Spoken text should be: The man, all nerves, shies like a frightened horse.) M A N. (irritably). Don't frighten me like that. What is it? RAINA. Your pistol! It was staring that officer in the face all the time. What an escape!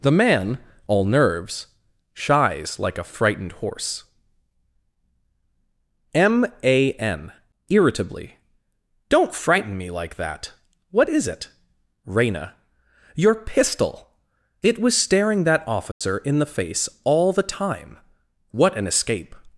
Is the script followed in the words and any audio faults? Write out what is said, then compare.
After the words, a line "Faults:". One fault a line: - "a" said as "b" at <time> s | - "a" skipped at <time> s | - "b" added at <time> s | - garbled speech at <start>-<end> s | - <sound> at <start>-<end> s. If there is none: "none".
The man, all nerves, shies like a frightened horse.) M A N. (irritably). Don't frighten me like that. What is it? RAINA. Your pistol! It was staring that officer in the face all the time. What an escape!
Faults:
- dropout at 15.9-16.0 s